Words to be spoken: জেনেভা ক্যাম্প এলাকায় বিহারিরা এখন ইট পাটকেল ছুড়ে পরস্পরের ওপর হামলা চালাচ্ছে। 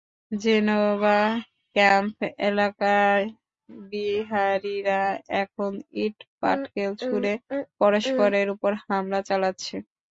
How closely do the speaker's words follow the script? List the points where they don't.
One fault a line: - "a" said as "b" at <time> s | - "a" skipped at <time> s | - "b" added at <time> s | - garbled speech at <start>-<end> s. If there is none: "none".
none